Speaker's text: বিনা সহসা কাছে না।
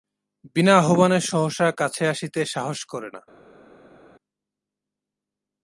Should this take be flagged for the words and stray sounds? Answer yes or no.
yes